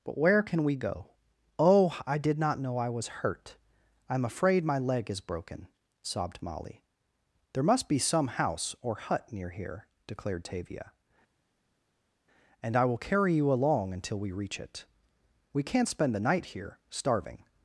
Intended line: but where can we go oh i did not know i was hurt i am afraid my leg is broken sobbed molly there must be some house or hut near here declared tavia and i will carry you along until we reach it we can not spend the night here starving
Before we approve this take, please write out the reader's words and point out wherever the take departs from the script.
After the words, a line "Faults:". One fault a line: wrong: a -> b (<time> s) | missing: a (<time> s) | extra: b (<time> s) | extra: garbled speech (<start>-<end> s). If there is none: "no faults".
but where can we go oh i did not know i was hurt i am afraid my leg is broken sobbed molly there must be some house or hut near here declared tavia and i will carry you along until we reach it we can not spend the night here starving
Faults:
no faults